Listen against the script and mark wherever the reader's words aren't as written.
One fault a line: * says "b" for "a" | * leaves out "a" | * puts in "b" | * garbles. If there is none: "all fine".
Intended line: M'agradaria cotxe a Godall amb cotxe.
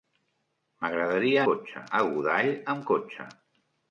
all fine